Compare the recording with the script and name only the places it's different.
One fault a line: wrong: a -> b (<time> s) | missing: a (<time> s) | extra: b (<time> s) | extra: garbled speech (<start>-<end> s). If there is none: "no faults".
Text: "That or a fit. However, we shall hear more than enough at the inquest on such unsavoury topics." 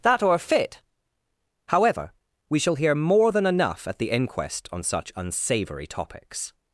no faults